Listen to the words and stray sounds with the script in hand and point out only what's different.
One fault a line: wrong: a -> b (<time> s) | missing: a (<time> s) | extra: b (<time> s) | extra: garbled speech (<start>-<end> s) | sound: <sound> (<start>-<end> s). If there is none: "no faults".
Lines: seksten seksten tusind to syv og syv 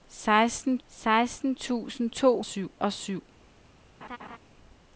sound: laugh (4.0-4.4 s)